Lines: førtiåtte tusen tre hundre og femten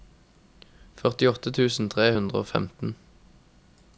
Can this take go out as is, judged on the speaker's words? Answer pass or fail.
pass